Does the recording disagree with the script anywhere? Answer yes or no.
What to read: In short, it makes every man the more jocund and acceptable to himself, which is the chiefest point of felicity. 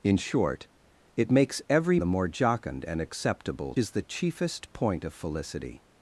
yes